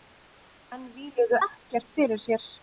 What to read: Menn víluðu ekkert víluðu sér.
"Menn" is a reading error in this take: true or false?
false